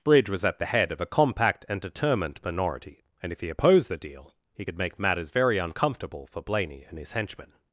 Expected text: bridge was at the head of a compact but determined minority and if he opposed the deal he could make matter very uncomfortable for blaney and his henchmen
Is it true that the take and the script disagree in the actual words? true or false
true